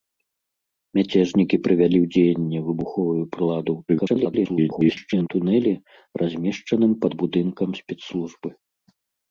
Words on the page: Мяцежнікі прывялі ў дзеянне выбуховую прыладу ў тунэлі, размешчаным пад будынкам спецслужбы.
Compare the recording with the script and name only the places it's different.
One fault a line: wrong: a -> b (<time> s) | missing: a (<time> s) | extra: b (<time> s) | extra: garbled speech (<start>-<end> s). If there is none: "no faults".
extra: garbled speech (3.9-5.3 s)